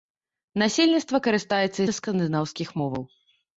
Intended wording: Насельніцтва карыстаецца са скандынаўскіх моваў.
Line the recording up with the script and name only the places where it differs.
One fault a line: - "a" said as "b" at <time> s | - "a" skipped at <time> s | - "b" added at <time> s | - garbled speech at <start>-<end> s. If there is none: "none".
none